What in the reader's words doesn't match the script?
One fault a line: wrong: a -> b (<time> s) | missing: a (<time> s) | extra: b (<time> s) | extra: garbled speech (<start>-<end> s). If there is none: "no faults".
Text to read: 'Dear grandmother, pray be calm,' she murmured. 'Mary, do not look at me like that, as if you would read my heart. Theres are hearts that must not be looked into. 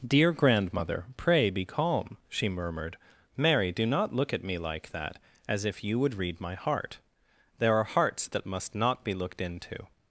wrong: Theres -> There (7.6 s)